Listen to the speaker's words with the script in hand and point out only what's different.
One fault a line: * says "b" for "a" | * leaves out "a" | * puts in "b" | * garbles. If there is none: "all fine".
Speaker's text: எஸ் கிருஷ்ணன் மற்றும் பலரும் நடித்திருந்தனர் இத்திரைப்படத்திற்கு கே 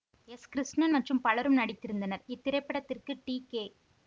* puts in "டி"